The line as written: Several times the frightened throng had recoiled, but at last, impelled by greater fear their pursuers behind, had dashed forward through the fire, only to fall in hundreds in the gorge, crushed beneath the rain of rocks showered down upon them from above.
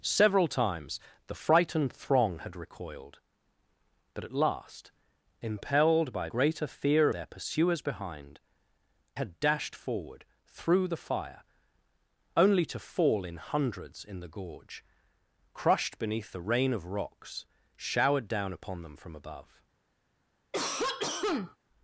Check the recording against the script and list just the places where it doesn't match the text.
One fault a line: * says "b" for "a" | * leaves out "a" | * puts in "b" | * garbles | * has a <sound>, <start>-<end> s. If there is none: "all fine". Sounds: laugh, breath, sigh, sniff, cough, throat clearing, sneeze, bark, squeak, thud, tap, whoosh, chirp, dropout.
* has a cough, 20.5-21.6 s